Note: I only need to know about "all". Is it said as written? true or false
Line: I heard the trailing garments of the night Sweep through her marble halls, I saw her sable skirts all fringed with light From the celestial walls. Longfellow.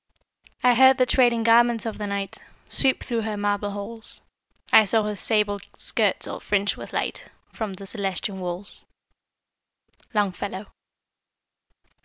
true